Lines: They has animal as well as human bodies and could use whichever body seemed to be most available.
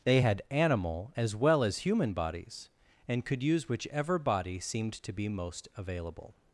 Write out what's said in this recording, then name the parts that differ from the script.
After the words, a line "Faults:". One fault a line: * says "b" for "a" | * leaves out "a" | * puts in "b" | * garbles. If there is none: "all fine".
They had animal as well as human bodies and could use whichever body seemed to be most available.
Faults:
* says "had" for "has"